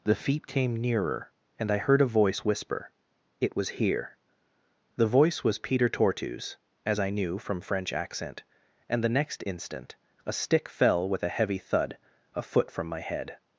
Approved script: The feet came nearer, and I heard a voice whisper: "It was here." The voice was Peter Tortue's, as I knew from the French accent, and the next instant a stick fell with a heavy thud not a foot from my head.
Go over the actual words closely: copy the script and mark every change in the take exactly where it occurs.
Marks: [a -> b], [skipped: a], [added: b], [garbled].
The feet came nearer, and I heard a voice whisper: "It was here." The voice was Peter Tortue's, as I knew from [skipped: the] French accent, and the next instant a stick fell with a heavy thud [skipped: not] a foot from my head.